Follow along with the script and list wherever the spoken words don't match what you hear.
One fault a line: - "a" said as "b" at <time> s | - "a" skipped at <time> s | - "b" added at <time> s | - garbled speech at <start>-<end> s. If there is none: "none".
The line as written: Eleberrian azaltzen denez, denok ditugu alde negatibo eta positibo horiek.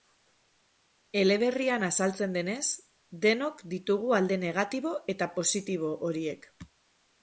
none